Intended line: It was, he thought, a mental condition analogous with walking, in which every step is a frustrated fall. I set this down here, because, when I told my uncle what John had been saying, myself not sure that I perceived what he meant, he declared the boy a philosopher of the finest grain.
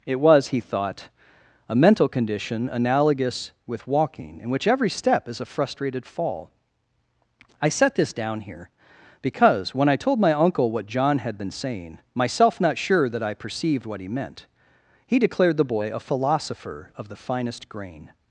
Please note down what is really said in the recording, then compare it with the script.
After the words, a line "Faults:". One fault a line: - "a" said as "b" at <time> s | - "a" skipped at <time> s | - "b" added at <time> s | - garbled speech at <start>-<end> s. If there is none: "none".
It was, he thought, a mental condition analogous with walking, in which every step is a frustrated fall. I set this down here, because, when I told my uncle what John had been saying, myself not sure that I perceived what he meant, he declared the boy a philosopher of the finest grain.
Faults:
none